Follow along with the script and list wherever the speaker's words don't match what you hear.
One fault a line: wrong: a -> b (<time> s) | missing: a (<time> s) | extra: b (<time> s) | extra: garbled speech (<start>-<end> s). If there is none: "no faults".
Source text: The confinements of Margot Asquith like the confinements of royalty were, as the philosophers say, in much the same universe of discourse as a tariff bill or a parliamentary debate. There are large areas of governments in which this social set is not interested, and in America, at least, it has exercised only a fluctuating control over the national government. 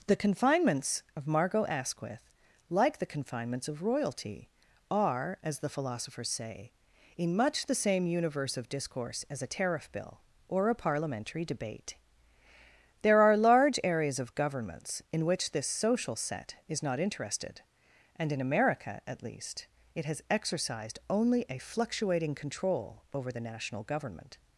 wrong: were -> are (4.9 s)